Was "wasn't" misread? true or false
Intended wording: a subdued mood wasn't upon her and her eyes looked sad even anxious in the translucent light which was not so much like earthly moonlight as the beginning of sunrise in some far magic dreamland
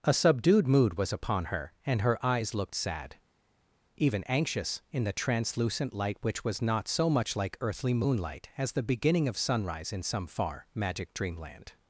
true